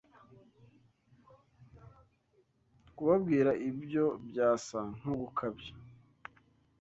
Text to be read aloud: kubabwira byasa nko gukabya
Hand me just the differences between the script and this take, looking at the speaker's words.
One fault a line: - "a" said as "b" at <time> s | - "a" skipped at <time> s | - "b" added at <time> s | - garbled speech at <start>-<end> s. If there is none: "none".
- "ibyo" added at 3.7 s